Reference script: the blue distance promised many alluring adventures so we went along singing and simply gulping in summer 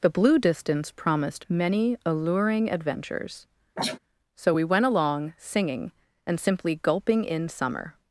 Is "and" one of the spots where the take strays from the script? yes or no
no